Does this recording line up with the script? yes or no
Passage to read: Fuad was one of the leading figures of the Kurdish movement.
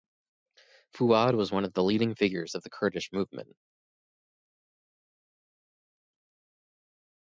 yes